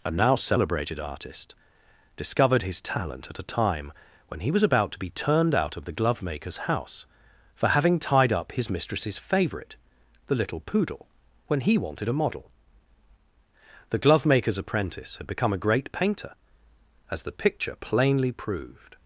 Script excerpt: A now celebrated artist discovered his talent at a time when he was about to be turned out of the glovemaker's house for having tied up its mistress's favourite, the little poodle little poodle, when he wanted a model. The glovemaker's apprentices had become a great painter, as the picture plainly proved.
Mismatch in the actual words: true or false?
true